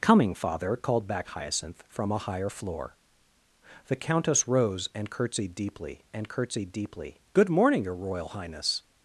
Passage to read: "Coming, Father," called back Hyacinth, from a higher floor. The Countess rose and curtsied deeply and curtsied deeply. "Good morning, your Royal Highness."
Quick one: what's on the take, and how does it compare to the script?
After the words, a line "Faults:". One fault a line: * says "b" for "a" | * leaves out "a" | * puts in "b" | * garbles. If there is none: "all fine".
"Coming, Father," called back Hyacinth, from a higher floor. The Countess rose and curtsied deeply and curtsied deeply. "Good morning, your Royal Highness."
Faults:
all fine